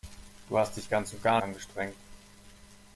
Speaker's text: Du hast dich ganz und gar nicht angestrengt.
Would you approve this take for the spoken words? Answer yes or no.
no